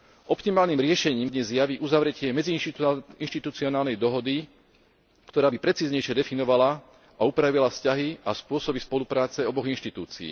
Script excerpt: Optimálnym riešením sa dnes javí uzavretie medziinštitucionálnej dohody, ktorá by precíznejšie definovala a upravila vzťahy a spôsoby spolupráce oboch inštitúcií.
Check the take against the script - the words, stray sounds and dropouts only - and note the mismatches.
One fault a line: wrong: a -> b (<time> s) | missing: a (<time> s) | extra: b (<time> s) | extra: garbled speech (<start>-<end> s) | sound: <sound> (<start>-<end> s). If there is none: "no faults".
missing: sa (1.3 s)